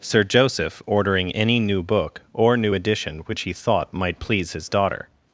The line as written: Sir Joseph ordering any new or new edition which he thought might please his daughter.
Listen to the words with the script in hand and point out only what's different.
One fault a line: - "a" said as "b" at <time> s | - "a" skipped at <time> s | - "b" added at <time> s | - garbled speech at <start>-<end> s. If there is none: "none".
- "book" added at 1.8 s